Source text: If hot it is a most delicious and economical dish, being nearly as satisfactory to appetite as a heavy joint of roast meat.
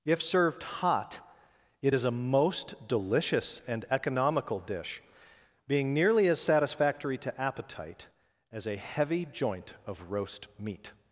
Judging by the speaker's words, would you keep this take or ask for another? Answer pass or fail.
fail